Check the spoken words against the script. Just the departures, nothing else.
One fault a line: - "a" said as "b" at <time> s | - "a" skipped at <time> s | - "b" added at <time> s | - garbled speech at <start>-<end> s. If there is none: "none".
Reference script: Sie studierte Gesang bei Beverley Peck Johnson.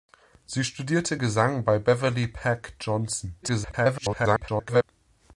- garbled speech at 3.4-4.8 s